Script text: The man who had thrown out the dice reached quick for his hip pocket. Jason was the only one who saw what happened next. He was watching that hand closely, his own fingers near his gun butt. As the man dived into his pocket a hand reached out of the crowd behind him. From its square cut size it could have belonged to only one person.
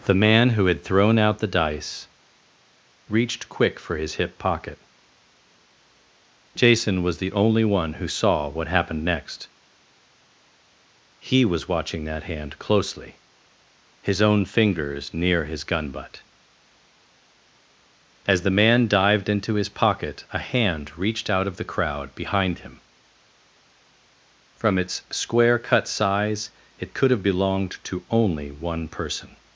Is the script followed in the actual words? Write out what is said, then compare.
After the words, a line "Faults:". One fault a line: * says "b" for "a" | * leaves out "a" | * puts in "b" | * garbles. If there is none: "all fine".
The man who had thrown out the dice reached quick for his hip pocket. Jason was the only one who saw what happened next. He was watching that hand closely, his own fingers near his gun butt. As the man dived into his pocket a hand reached out of the crowd behind him. From its square cut size it could have belonged to only one person.
Faults:
all fine